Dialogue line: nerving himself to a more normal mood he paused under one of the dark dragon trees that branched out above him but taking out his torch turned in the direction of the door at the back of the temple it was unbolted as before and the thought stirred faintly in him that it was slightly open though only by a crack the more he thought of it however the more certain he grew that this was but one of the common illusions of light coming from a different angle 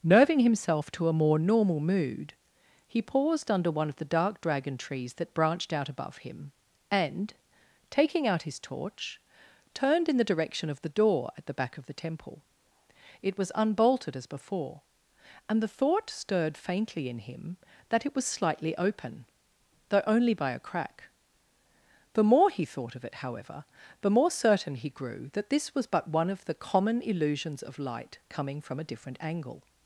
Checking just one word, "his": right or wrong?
right